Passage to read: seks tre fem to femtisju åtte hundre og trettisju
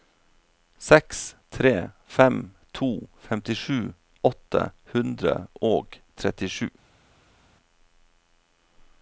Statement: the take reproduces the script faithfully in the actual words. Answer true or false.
true